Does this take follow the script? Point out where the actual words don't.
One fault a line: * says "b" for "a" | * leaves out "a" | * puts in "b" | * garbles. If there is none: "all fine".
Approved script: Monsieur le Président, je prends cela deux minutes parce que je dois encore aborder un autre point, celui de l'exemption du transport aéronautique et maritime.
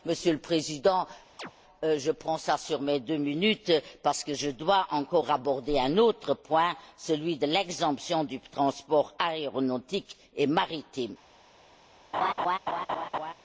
* puts in "sur mes"